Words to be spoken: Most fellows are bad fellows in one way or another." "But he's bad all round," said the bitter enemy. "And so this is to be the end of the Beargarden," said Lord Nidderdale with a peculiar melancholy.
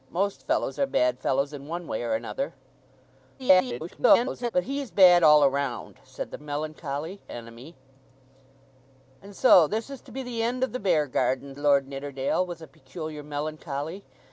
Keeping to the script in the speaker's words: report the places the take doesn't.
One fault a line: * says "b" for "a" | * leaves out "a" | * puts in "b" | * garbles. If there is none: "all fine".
* garbles
* says "melancholy" for "bitter"
* leaves out "said"